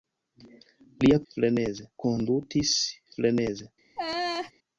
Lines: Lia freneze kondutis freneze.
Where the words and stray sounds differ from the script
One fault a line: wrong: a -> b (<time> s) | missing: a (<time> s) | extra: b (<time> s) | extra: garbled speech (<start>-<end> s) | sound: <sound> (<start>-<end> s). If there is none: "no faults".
sound: laugh (4.0-4.5 s)